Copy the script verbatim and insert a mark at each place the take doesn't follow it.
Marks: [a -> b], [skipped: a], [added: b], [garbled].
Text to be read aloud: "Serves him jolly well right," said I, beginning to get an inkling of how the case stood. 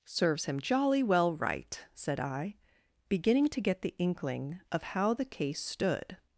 "Serves him jolly well right," said I, beginning to get [an -> the] inkling of how the case stood.